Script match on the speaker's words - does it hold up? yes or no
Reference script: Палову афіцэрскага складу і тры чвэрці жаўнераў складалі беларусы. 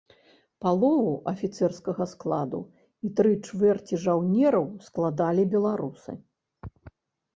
yes